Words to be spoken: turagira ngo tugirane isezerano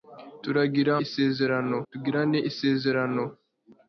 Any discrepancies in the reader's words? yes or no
yes